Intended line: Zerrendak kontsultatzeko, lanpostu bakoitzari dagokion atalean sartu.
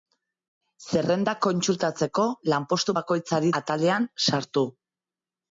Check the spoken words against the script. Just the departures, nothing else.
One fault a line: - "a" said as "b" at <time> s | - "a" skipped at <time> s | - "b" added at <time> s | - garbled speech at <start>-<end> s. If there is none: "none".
- "dagokion" skipped at 3.5 s